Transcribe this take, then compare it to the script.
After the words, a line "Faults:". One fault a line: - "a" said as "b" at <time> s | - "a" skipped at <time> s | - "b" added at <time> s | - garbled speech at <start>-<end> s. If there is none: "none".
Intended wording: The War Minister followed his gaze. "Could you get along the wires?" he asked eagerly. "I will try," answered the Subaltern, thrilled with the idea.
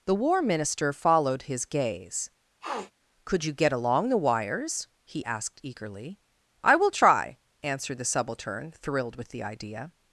The War Minister followed his gaze. "Could you get along the wires?" he asked eagerly. "I will try," answered the Subaltern, thrilled with the idea.
Faults:
none